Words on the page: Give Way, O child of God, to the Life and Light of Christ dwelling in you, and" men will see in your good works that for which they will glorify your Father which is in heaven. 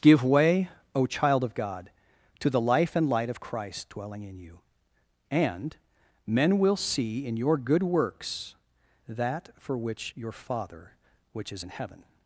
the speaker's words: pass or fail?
fail